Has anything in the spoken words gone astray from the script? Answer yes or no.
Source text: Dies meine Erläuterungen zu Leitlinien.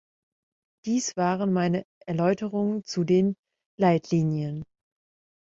yes